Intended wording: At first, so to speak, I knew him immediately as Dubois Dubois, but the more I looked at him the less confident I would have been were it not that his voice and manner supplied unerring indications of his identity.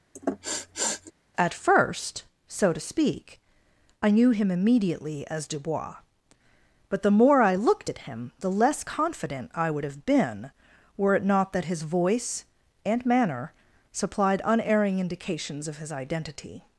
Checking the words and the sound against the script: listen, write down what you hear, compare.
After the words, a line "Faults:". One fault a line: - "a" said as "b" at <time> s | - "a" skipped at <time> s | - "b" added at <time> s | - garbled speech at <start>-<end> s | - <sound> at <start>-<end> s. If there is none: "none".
At first, so to speak, I knew him immediately as Dubois, but the more I looked at him the less confident I would have been were it not that his voice and manner supplied unerring indications of his identity.
Faults:
- sniff at 0.1-1.1 s
- "Dubois" skipped at 6.0 s